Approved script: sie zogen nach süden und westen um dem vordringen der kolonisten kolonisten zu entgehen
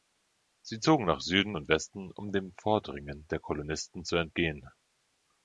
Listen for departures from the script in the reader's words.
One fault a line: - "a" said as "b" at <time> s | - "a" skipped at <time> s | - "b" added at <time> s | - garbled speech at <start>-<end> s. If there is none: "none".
- "kolonisten" skipped at 4.0 s